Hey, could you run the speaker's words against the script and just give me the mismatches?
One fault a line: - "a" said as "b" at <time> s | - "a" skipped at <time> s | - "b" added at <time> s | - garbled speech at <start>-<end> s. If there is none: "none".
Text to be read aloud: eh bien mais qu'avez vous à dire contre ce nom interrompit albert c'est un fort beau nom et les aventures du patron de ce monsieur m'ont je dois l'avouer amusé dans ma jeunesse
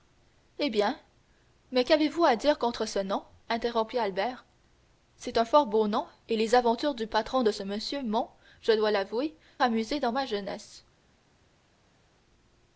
none